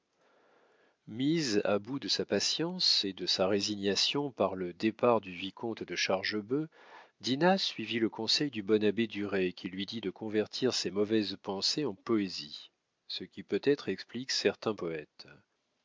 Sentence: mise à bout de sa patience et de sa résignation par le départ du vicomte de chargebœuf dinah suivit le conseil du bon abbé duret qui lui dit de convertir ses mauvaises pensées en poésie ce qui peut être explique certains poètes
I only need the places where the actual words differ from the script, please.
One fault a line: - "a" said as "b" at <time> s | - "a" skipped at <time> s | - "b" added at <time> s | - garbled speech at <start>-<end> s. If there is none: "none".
none